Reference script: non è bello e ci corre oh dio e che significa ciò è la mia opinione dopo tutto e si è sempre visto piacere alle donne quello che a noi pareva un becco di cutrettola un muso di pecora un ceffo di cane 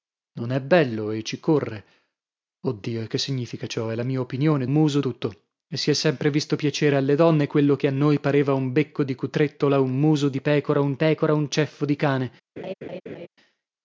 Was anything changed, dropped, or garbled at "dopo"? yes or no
yes